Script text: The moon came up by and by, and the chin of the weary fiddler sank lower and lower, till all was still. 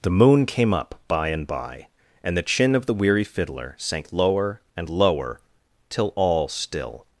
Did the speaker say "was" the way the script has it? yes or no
no